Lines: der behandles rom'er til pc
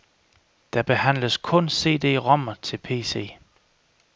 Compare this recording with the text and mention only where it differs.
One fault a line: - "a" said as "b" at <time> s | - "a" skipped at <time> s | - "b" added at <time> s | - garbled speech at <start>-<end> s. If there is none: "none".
- "kun cd" added at 1.4 s